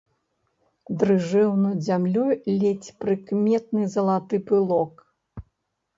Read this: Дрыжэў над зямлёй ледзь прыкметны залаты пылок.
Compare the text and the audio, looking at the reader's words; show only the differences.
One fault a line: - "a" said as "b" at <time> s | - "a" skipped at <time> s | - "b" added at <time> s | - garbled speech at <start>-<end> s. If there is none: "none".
none